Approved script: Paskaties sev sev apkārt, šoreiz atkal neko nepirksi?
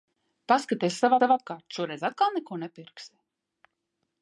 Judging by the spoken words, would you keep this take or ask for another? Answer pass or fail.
pass